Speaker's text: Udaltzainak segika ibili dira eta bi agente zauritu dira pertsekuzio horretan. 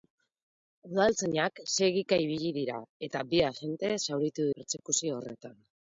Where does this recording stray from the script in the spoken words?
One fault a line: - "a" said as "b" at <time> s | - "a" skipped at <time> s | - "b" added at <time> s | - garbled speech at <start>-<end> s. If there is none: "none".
- "dira" skipped at 4.5 s